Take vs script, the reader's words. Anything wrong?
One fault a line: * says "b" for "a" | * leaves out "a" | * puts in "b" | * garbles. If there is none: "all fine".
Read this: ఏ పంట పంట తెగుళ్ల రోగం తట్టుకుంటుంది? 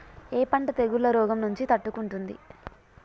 * leaves out "పంట"
* puts in "నుంచి"